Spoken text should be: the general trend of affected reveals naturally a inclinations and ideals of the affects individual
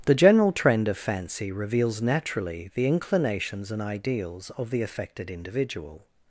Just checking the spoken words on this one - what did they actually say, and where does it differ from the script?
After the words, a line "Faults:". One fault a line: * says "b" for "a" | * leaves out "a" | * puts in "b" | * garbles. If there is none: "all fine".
the general trend of fancy reveals naturally the inclinations and ideals of the affected individual
Faults:
* says "fancy" for "affected"
* says "the" for "a"
* says "affected" for "affects"